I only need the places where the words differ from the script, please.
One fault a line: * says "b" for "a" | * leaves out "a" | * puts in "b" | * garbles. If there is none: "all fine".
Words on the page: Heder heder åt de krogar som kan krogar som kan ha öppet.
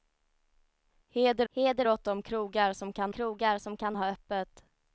all fine